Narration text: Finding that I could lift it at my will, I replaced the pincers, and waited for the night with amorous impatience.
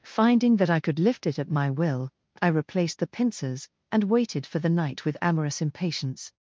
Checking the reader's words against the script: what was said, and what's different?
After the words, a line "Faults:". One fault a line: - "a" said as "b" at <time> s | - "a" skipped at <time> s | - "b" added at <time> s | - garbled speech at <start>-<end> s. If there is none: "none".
Finding that I could lift it at my will, I replaced the pincers, and waited for the night with amorous impatience.
Faults:
none